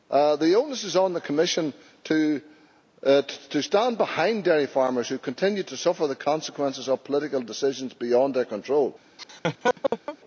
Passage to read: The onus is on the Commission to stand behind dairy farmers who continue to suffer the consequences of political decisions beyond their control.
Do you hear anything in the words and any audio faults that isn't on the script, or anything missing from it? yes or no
yes